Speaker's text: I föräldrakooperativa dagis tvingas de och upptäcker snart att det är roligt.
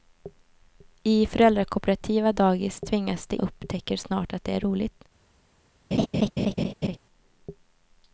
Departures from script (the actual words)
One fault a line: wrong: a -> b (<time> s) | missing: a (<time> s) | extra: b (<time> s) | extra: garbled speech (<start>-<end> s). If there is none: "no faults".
no faults